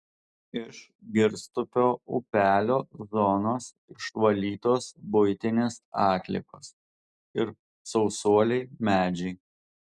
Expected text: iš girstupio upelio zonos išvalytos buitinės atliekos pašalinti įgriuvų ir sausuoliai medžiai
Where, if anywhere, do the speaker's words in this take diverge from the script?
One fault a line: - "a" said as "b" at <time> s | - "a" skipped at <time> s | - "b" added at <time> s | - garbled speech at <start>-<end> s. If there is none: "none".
- "pašalinti įgriuvų" skipped at 6.7 s